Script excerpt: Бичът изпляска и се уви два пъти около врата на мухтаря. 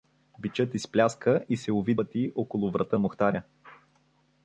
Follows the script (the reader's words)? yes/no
no